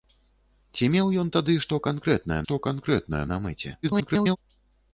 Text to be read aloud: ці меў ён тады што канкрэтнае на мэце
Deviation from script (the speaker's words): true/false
true